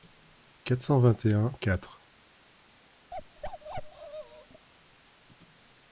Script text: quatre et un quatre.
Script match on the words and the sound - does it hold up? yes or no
no